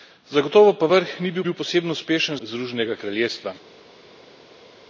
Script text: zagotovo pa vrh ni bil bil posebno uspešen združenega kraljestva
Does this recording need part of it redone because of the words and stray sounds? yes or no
no